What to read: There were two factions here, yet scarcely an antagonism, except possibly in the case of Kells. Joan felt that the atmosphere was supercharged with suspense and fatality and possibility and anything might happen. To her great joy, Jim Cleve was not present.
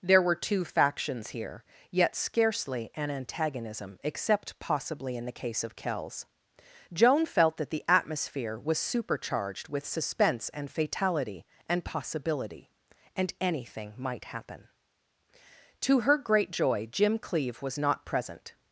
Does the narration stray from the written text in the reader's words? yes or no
no